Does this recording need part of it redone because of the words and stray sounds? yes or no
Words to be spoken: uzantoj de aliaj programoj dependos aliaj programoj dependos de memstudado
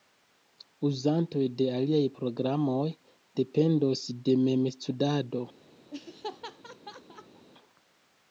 yes